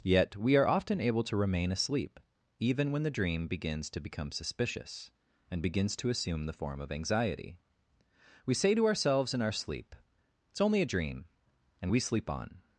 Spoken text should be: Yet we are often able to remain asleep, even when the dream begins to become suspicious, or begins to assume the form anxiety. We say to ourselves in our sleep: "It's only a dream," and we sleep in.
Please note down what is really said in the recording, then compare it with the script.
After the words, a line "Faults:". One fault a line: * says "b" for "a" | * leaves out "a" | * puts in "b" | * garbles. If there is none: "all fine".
Yet we are often able to remain asleep, even when the dream begins to become suspicious, and begins to assume the form of anxiety. We say to ourselves in our sleep: "It's only a dream," and we sleep on.
Faults:
* says "and" for "or"
* puts in "of"
* says "on" for "in"